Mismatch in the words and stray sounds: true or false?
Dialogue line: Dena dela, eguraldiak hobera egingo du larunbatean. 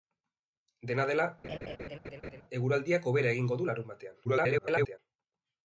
true